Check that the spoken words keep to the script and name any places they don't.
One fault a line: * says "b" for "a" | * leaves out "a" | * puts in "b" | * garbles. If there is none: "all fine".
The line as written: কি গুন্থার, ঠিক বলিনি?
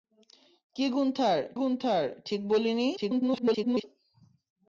* puts in "গুন্থার"
* garbles